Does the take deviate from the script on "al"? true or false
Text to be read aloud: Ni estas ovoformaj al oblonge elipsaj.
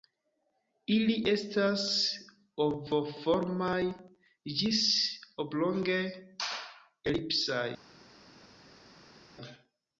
true